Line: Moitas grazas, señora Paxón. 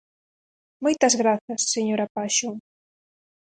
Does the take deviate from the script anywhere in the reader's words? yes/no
no